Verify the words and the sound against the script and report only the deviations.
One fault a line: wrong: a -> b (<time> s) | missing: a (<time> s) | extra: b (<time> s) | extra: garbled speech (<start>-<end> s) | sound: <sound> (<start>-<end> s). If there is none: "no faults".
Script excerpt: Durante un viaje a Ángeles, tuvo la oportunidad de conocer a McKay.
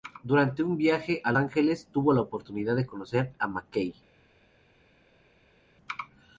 no faults